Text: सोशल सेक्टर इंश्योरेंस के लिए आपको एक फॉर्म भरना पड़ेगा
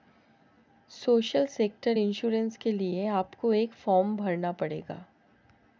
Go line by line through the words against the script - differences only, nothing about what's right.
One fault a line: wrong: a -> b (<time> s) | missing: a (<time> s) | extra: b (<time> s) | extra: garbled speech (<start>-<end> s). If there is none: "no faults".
no faults